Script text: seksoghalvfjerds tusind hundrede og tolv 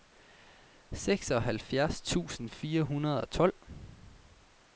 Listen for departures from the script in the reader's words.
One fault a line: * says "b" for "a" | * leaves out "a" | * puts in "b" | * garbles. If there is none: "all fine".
* puts in "fire"